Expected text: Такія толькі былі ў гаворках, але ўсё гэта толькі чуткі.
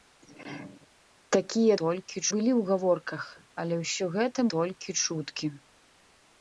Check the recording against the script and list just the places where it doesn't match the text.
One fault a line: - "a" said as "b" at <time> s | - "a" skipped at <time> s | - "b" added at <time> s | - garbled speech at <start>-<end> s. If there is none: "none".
none